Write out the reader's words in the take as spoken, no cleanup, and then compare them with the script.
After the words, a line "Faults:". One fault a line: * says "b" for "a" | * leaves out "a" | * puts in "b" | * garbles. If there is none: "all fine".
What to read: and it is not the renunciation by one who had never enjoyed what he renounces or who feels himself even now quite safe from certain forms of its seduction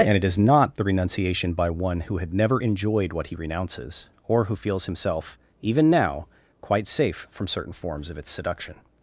and it is not the renunciation by one who had never enjoyed what he renounces or who feels himself even now quite safe from certain forms of its seduction
Faults:
all fine